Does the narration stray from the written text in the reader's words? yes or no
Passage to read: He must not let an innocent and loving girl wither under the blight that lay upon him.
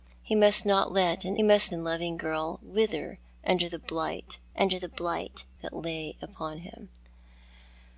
yes